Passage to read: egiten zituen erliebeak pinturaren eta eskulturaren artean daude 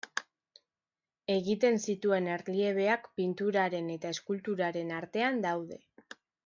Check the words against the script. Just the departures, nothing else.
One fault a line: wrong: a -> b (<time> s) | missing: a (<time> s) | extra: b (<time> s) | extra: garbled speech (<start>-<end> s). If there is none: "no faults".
no faults